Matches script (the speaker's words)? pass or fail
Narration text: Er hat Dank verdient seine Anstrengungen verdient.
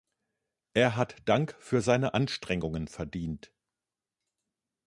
fail